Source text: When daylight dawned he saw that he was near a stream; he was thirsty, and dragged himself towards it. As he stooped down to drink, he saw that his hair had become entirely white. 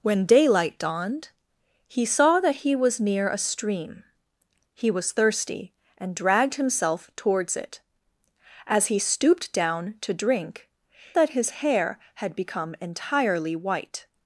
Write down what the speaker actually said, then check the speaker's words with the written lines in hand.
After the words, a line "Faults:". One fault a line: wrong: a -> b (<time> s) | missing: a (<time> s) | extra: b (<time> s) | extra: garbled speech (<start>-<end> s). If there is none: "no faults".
When daylight dawned he saw that he was near a stream; he was thirsty, and dragged himself towards it. As he stooped down to drink, that his hair had become entirely white.
Faults:
missing: he saw (10.7 s)